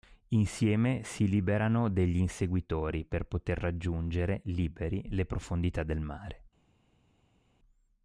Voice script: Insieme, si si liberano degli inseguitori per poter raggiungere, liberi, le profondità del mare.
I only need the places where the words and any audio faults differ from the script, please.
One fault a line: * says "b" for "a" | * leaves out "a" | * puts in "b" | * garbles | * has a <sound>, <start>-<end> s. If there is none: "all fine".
* leaves out "si"